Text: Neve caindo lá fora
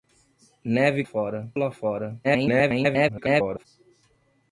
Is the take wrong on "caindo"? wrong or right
wrong